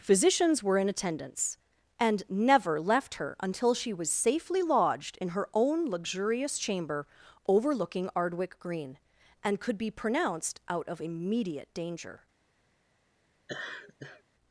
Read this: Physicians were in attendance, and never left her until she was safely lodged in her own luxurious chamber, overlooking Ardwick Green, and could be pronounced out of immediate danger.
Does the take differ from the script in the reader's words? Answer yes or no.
no